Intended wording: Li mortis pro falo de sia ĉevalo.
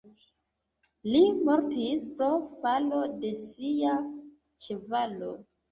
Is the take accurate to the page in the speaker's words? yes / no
yes